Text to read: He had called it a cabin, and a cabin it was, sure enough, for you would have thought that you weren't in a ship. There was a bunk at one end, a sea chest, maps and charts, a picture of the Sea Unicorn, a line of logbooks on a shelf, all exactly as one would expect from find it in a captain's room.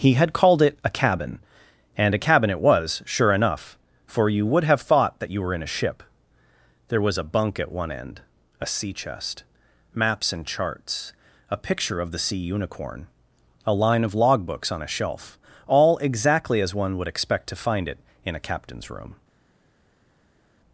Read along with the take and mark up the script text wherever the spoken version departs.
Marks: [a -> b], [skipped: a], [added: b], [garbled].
He had called it a cabin, and a cabin it was, sure enough, for you would have thought that you [weren't -> were] in a ship. There was a bunk at one end, a sea chest, maps and charts, a picture of the Sea Unicorn, a line of logbooks on a shelf, all exactly as one would expect [from -> to] find it in a captain's room.